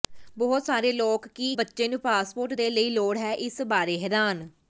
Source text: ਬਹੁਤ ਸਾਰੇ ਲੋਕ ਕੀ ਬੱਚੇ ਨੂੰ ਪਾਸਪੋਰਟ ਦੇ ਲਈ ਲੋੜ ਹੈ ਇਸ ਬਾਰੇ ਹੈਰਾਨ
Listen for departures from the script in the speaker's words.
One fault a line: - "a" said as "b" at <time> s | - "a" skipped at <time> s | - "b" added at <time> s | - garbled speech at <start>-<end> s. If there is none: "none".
none